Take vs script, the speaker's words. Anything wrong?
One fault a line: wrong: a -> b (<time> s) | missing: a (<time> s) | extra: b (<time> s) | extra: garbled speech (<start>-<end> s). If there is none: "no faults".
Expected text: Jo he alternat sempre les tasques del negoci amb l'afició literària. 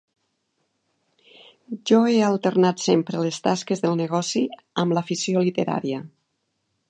no faults